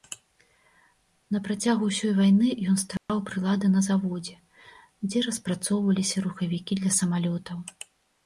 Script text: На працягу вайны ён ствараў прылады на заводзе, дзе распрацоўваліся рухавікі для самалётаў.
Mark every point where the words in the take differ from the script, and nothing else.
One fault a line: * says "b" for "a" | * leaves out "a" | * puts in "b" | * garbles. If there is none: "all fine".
* puts in "ўсёй"